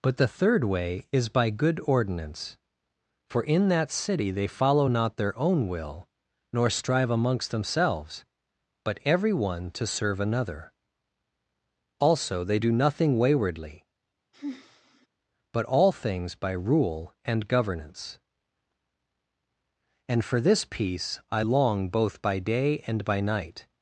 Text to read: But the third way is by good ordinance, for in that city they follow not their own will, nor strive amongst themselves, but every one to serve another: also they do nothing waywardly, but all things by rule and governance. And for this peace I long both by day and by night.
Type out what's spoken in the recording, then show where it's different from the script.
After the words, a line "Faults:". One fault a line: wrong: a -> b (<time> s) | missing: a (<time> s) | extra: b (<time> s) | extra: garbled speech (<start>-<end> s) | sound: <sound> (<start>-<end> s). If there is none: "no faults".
But the third way is by good ordinance, for in that city they follow not their own will, nor strive amongst themselves, but every one to serve another: also they do nothing waywardly, but all things by rule and governance. And for this peace I long both by day and by night.
Faults:
sound: sigh (14.3-15.1 s)